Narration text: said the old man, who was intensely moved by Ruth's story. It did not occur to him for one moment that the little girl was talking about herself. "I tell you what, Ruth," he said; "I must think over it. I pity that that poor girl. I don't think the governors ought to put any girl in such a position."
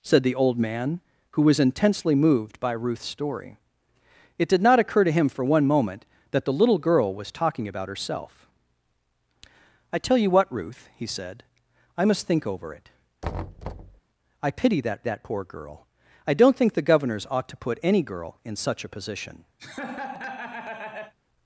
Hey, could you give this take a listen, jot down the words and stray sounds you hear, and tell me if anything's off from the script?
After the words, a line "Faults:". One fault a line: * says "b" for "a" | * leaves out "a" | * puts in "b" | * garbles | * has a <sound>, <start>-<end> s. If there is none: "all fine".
said the old man, who was intensely moved by Ruth's story. It did not occur to him for one moment that the little girl was talking about herself. "I tell you what, Ruth," he said; "I must think over it. I pity that that poor girl. I don't think the governors ought to put any girl in such a position."
Faults:
* has a thud, 13.2-14.0 s
* has a laugh, 19.6-21.1 s